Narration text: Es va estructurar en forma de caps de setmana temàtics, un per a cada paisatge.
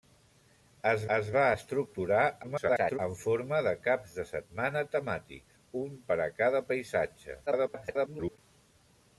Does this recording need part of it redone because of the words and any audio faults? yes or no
yes